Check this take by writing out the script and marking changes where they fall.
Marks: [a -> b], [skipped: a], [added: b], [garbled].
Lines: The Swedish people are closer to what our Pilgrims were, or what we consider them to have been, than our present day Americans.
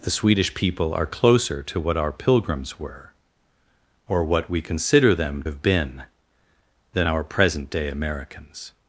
The Swedish people are closer to what our Pilgrims were, or what we consider them [skipped: to] have been, than our present day Americans.